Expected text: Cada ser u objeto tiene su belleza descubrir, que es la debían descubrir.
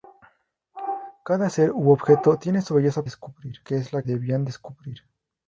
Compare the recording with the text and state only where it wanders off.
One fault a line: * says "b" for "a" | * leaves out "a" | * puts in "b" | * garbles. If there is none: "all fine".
all fine